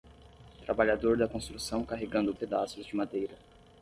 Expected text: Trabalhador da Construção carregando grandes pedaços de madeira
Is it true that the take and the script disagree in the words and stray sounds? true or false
true